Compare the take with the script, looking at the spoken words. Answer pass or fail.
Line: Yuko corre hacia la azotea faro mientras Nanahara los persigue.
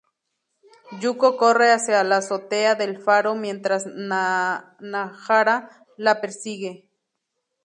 fail